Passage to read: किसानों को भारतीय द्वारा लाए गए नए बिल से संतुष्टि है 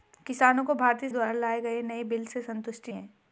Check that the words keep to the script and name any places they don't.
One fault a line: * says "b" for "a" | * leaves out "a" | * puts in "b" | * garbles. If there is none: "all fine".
all fine